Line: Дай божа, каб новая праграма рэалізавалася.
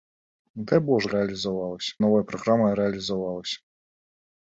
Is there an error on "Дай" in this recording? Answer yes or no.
no